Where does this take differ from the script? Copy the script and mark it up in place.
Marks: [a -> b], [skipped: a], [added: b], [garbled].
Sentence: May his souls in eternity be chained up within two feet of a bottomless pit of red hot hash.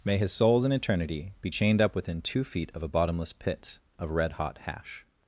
May his souls in eternity be chained up within two feet of a bottomless pit of red hot hash.